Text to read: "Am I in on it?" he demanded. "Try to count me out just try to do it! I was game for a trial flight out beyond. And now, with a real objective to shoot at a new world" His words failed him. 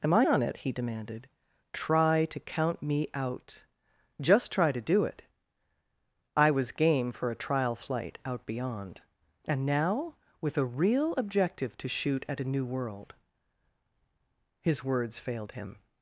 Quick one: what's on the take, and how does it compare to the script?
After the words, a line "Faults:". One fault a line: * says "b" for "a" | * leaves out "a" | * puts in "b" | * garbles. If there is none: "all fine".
"Am I on it?" he demanded. "Try to count me out just try to do it! I was game for a trial flight out beyond. And now, with a real objective to shoot at a new world" His words failed him.
Faults:
* leaves out "in"